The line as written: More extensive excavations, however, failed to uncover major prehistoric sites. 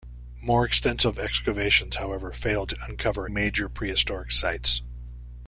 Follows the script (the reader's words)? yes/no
yes